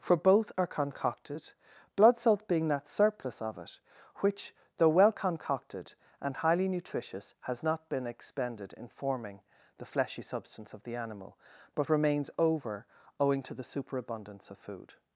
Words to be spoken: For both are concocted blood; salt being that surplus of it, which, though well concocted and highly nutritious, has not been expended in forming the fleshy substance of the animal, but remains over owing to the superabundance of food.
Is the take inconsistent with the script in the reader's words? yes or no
no